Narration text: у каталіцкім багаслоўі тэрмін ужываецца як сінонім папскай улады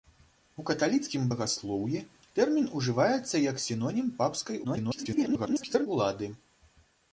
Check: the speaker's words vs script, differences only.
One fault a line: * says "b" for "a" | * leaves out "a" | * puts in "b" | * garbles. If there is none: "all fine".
* garbles